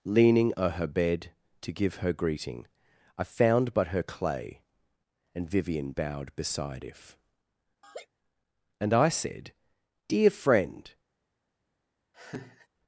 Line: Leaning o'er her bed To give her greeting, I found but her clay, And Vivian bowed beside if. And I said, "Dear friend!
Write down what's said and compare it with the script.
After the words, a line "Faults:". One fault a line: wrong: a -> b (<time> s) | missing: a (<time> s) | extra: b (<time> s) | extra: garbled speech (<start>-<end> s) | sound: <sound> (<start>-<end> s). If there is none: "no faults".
Leaning o'er her bed To give her greeting, I found but her clay, And Vivian bowed beside if. And I said, "Dear friend!
Faults:
sound: laugh (7.8-8.1 s)
sound: laugh (12.1-12.7 s)